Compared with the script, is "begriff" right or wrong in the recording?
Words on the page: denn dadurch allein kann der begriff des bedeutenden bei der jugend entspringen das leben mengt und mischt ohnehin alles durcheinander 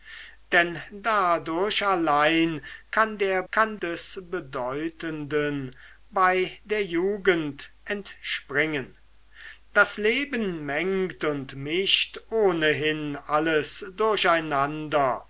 wrong